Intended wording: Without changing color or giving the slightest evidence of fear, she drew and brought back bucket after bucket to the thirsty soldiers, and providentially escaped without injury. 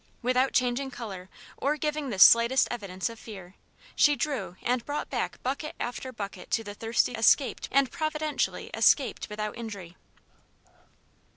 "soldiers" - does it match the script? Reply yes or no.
no